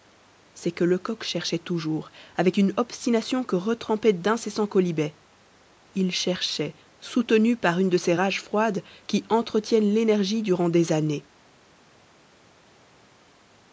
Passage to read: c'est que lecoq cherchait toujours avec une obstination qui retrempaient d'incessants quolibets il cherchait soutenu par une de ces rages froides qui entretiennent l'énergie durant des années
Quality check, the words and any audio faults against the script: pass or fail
fail